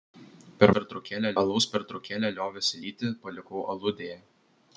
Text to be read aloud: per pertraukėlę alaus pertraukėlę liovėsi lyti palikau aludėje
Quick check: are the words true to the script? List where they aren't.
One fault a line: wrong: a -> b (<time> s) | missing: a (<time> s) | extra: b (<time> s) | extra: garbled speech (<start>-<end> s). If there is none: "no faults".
no faults